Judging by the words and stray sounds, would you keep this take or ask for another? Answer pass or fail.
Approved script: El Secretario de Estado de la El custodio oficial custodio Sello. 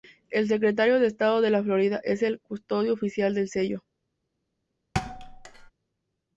fail